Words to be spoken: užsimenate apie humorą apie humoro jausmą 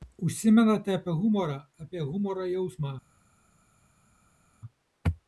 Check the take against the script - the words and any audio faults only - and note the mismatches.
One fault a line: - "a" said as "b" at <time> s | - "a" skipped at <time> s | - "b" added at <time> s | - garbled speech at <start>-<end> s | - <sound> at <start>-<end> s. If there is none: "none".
none